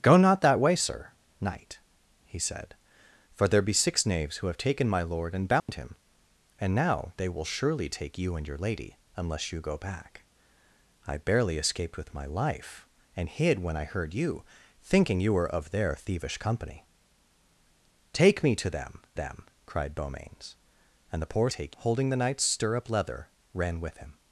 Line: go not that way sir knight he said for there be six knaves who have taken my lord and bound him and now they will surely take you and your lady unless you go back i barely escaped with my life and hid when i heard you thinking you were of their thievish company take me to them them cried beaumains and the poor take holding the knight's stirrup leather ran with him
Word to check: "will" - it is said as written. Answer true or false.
true